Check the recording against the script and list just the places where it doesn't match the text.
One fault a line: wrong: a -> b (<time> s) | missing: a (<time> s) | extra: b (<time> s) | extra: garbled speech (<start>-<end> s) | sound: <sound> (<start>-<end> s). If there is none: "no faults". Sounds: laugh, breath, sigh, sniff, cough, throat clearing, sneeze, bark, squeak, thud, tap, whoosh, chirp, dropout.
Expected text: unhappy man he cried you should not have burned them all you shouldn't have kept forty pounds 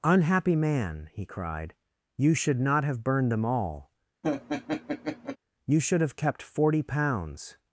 sound: laugh (4.2-5.4 s)
wrong: shouldn't -> should (5.8 s)